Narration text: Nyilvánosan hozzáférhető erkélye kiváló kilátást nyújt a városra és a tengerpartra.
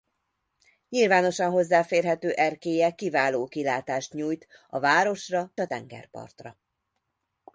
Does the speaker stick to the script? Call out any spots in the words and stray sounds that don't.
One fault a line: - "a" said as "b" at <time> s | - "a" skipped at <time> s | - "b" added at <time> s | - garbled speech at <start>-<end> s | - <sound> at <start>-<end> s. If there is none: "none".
- "és" skipped at 5.5 s